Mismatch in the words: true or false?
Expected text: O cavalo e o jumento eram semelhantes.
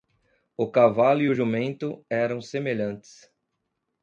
false